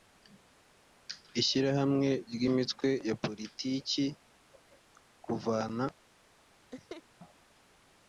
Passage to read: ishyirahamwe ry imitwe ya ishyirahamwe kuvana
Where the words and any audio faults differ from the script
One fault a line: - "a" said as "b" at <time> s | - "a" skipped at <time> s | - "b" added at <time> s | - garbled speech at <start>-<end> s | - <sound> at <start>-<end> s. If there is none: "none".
- "ishyirahamwe" said as "politiki" at 3.2 s
- laugh at 6.7-7.0 s